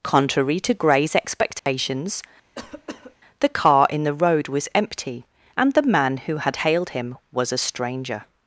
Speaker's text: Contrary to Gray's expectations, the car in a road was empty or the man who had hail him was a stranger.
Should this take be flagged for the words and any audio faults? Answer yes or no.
yes